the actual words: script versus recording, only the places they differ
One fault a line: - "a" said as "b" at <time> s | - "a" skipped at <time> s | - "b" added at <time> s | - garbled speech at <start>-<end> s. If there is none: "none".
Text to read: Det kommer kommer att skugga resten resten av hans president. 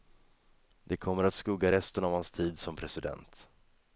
- "kommer" skipped at 1.2 s
- "resten" skipped at 2.0 s
- "tid som" added at 2.3 s